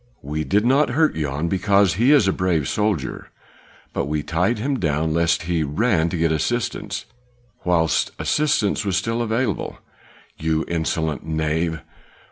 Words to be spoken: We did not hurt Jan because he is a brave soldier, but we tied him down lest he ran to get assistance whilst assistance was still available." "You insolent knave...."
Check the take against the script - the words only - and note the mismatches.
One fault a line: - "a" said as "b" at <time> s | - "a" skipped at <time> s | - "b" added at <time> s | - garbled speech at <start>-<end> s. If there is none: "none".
none